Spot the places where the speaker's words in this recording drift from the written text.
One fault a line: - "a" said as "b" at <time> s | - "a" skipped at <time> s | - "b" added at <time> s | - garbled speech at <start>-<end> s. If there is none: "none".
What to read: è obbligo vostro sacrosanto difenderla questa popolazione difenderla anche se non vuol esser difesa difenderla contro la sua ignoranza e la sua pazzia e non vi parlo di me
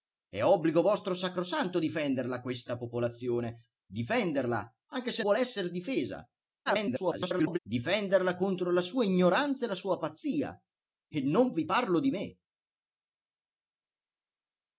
- "non" skipped at 5.2 s
- garbled speech at 6.7-7.6 s